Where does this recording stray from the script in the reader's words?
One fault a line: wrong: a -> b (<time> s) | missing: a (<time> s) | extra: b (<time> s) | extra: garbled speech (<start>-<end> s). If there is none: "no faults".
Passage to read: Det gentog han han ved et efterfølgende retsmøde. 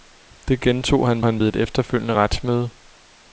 no faults